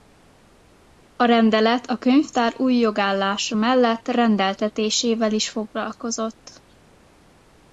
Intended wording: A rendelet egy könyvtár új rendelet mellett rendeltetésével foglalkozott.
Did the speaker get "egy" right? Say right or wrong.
wrong